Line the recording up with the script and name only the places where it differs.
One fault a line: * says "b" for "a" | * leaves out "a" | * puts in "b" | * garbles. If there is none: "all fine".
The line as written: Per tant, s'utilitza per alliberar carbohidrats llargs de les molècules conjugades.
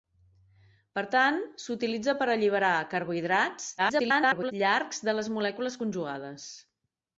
* garbles